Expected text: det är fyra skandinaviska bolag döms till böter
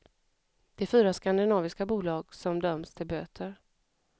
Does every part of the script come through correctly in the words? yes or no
no